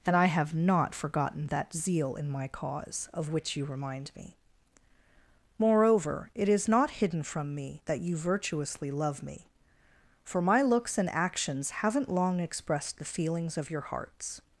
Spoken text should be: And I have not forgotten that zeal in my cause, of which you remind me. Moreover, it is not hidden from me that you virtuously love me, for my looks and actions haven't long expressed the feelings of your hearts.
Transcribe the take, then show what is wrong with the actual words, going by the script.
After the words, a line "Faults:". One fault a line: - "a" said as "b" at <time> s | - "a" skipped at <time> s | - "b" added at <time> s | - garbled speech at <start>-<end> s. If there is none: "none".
And I have not forgotten that zeal in my cause, of which you remind me. Moreover, it is not hidden from me that you virtuously love me, for my looks and actions haven't long expressed the feelings of your hearts.
Faults:
none